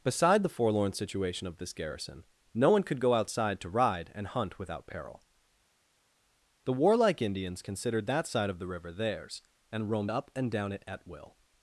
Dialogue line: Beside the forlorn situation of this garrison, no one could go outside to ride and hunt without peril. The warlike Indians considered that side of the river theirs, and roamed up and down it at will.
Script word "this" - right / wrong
right